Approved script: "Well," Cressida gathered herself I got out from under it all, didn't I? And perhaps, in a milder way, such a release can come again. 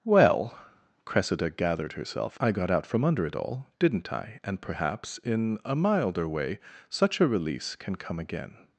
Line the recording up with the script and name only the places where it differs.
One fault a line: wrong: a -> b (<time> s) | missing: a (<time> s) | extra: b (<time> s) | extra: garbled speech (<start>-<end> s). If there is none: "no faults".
no faults